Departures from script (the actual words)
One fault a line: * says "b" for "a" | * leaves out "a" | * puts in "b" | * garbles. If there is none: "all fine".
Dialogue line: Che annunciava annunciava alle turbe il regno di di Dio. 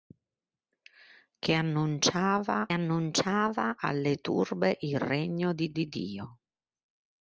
all fine